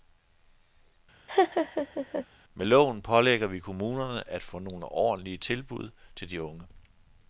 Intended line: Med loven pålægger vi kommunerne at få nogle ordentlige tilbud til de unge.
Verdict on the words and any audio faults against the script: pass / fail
fail